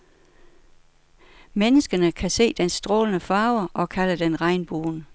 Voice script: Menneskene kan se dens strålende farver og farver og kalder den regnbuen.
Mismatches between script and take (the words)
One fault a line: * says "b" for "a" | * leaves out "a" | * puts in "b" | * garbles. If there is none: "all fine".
* leaves out "farver og"